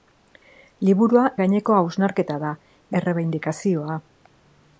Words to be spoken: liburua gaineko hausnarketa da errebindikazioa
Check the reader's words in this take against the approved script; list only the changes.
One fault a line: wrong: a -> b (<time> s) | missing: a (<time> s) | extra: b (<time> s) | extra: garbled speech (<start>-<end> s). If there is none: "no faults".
no faults